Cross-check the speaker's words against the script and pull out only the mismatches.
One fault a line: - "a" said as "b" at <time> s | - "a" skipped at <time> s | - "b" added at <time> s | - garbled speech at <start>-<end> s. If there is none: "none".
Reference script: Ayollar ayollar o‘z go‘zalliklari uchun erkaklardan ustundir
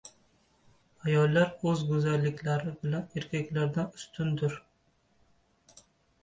- "ayollar" skipped at 1.5 s
- "uchun" said as "bilan" at 2.9 s